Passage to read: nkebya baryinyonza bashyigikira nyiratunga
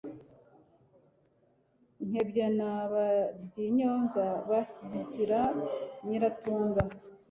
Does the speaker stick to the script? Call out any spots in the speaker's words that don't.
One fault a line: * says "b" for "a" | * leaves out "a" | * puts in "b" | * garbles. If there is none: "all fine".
* puts in "na"